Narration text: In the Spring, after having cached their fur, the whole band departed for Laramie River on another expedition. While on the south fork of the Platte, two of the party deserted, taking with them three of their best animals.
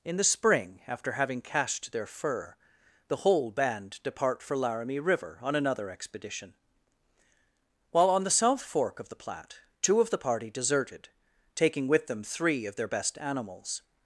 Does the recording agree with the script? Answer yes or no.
no